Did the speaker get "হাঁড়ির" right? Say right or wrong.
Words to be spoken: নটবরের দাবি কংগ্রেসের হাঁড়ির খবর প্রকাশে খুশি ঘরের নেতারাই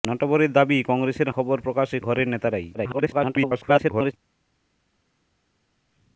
wrong